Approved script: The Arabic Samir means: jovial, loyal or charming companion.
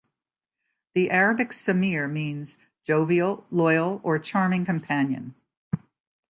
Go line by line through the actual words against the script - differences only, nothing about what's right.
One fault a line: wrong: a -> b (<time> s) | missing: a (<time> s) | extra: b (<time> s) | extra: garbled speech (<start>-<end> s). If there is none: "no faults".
no faults